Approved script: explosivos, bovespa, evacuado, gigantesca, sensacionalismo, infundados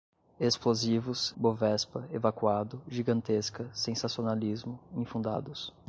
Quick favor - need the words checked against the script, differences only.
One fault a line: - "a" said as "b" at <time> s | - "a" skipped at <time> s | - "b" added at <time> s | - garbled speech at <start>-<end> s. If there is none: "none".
none